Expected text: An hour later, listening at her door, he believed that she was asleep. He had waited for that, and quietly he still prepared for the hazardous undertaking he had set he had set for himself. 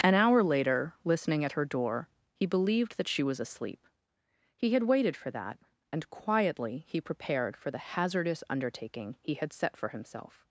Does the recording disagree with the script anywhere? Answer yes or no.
yes